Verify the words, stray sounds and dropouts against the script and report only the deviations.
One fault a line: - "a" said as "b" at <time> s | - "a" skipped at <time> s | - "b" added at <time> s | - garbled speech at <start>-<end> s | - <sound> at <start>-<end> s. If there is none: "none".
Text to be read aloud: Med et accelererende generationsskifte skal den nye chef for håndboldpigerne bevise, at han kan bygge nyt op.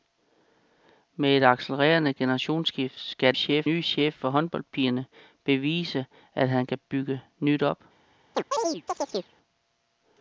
- "den" said as "chef" at 3.3 s
- chirp at 8.3-9.3 s